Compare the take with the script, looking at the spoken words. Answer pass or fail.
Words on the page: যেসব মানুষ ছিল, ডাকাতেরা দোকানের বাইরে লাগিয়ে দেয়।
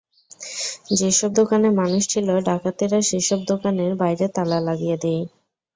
fail